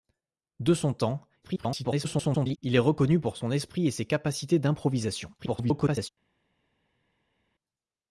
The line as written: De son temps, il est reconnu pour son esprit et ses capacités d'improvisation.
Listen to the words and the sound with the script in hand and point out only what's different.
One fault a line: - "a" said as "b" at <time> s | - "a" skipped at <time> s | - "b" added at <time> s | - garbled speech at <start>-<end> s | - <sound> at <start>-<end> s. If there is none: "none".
- garbled speech at 1.4-2.6 s
- garbled speech at 5.4-6.1 s